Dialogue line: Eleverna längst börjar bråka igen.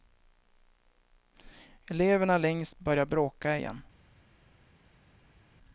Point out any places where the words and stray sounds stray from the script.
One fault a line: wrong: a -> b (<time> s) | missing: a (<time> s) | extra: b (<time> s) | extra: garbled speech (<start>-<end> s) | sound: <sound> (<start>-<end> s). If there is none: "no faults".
no faults